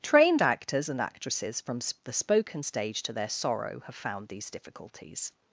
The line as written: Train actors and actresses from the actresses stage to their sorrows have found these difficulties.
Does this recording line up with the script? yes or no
no